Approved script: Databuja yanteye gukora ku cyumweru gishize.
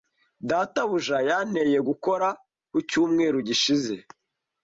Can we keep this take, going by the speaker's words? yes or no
yes